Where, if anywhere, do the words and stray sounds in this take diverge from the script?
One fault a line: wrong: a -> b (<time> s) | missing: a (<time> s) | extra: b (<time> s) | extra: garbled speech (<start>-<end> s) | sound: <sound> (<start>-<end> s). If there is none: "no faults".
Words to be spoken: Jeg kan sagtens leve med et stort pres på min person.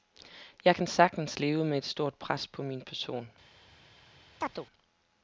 sound: chirp (4.4-4.7 s)